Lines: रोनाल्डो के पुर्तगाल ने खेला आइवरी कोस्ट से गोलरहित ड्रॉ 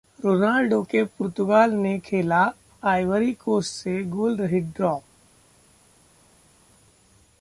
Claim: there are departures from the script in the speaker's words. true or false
false